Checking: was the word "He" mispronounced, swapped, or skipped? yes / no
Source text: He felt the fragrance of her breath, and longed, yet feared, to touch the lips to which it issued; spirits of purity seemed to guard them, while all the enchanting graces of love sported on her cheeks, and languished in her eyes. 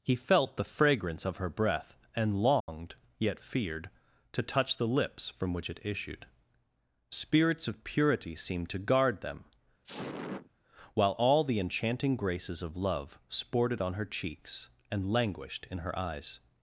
no